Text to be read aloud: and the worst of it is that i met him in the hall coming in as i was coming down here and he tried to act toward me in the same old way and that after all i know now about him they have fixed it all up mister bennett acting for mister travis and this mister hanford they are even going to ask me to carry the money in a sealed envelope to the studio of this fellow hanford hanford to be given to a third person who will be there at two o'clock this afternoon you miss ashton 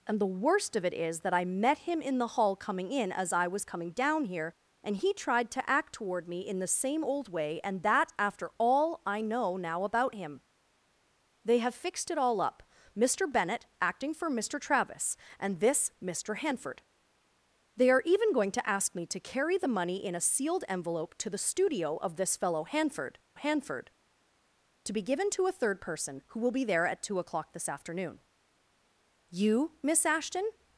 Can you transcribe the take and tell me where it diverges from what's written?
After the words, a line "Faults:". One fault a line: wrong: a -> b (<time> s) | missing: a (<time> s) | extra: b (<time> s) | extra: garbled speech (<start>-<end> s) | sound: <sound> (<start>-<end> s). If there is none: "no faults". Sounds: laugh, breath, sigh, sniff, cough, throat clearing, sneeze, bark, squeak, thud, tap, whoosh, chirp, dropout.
and the worst of it is that i met him in the hall coming in as i was coming down here and he tried to act toward me in the same old way and that after all i know now about him they have fixed it all up mister bennett acting for mister travis and this mister hanford they are even going to ask me to carry the money in a sealed envelope to the studio of this fellow hanford hanford to be given to a third person who will be there at two o'clock this afternoon you miss ashton
Faults:
no faults